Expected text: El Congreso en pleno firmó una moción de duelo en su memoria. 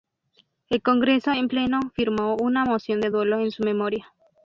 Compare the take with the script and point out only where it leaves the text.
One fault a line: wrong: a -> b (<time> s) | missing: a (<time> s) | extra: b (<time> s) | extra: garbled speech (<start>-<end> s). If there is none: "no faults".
no faults